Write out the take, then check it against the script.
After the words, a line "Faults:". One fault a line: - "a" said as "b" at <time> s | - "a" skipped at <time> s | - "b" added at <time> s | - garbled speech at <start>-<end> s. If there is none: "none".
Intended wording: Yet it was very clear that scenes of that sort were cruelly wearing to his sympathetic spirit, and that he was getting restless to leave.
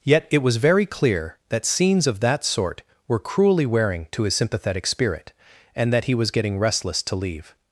Yet it was very clear that scenes of that sort were cruelly wearing to his sympathetic spirit, and that he was getting restless to leave.
Faults:
none